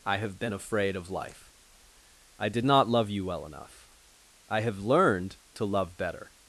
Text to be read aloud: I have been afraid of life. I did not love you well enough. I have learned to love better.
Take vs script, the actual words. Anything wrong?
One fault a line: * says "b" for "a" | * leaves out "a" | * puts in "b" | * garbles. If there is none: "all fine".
all fine